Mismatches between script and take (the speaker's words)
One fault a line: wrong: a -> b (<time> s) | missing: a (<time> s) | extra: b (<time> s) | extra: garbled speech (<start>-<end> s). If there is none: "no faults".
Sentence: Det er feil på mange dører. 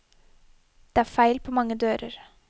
no faults